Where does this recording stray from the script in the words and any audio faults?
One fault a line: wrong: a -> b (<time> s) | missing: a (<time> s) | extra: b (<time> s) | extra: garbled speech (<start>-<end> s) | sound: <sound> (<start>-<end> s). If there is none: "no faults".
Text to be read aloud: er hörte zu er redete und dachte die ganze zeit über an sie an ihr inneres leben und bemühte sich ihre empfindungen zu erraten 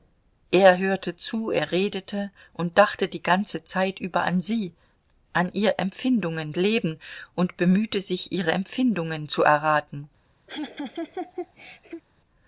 wrong: inneres -> empfindungen (5.8 s)
sound: laugh (10.5-12.0 s)